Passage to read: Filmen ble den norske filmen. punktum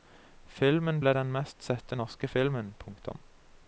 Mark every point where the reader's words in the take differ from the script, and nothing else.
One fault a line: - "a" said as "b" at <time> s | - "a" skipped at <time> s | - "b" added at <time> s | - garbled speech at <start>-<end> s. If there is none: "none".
- "mest sette" added at 1.4 s